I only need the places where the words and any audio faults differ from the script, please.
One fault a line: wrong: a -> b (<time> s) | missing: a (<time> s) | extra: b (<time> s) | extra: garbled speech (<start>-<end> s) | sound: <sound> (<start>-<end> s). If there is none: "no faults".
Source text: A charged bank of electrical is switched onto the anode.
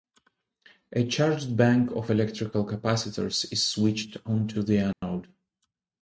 extra: capacitors (2.6 s)
sound: dropout (4.9-5.0 s)